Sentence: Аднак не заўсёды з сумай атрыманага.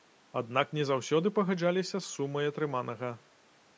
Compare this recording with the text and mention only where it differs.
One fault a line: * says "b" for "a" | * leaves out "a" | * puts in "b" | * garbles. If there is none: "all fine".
* puts in "пагаджаліся"